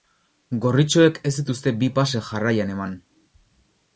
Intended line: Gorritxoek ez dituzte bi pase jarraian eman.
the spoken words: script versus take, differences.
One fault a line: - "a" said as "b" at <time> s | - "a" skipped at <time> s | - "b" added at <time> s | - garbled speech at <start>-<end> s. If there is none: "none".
none